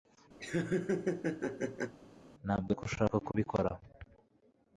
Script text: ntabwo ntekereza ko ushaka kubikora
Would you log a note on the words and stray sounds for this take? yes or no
yes